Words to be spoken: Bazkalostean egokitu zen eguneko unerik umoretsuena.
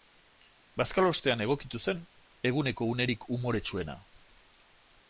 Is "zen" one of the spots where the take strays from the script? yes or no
no